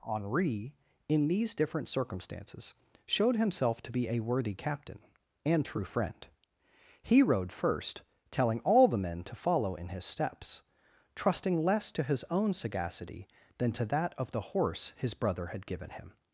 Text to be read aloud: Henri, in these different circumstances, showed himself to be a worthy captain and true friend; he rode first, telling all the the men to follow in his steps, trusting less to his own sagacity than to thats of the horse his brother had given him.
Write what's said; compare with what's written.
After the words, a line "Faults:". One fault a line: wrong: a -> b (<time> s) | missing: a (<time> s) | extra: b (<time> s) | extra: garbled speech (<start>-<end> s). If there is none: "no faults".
Henri, in these different circumstances, showed himself to be a worthy captain and true friend; he rode first, telling all the men to follow in his steps, trusting less to his own sagacity than to that of the horse his brother had given him.
Faults:
missing: the (9.0 s)
wrong: thats -> that (13.8 s)